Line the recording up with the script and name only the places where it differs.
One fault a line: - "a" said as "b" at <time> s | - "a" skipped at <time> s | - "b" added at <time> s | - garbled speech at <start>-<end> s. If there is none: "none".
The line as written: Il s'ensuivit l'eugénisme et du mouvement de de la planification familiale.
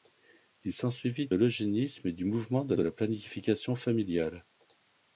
none